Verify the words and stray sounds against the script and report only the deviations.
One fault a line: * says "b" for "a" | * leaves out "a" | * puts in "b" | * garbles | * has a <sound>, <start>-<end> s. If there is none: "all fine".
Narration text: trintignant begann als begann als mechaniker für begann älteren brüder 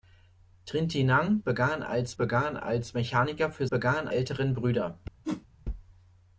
* has a whoosh, 5.2-5.5 s